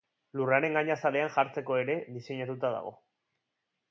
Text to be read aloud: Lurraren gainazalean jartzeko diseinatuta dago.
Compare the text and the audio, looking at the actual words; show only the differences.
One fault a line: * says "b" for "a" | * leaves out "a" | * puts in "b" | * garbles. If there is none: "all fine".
* puts in "ere"